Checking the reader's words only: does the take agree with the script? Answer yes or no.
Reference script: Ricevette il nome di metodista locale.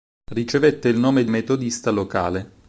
yes